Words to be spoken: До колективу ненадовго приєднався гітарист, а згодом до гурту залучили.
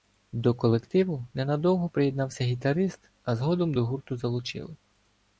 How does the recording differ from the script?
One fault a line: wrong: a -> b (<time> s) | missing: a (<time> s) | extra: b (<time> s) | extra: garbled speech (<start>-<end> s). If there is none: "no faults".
no faults